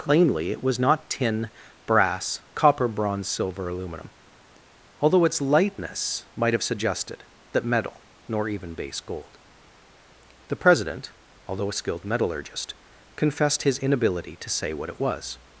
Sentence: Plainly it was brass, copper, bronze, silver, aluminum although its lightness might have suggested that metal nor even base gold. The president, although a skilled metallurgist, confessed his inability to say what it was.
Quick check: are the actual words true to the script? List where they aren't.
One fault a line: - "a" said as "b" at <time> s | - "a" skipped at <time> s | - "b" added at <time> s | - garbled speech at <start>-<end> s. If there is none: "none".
- "not tin" added at 0.8 s